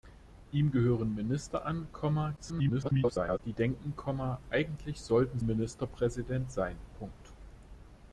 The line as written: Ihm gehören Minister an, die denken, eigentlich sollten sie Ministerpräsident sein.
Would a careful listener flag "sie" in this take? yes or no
yes